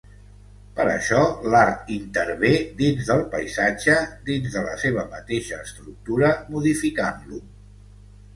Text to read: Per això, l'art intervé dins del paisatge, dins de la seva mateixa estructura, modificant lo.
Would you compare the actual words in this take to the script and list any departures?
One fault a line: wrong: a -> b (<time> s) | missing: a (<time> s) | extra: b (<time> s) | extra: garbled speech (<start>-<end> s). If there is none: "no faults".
no faults